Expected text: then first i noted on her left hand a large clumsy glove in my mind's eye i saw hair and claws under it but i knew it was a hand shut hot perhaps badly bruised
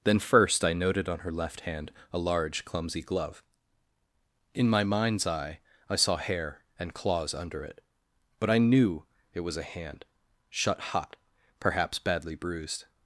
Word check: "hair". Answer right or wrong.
right